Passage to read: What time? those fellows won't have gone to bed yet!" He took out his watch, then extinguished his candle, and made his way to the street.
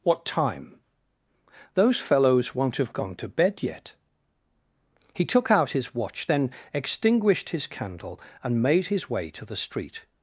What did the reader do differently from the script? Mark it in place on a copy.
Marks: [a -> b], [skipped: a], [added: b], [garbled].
What time? those fellows won't have gone to bed yet!" He took out his watch, then extinguished his candle, and made his way to the street.